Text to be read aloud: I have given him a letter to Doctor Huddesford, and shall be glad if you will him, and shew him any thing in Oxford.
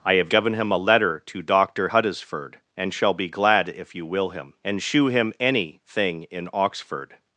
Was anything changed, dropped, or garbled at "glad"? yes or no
no